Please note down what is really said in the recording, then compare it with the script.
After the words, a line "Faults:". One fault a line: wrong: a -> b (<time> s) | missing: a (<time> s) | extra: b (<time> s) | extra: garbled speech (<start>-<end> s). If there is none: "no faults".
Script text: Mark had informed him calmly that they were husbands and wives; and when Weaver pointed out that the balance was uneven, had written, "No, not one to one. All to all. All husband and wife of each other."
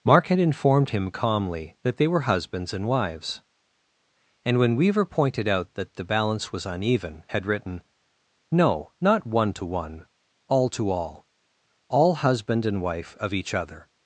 Mark had informed him calmly that they were husbands and wives; and when Weaver pointed out that the balance was uneven, had written, "No, not one to one. All to all. All husband and wife of each other."
Faults:
no faults